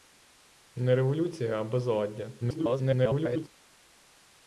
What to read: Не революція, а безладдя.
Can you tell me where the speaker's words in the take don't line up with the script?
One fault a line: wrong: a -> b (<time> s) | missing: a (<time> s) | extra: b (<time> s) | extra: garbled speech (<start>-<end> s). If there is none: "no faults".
extra: garbled speech (2.4-3.5 s)